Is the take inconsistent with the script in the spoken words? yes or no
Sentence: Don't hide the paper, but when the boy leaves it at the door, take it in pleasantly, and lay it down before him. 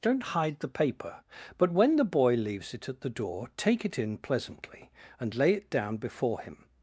no